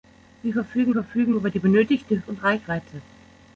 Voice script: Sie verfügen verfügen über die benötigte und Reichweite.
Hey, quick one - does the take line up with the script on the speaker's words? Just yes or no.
yes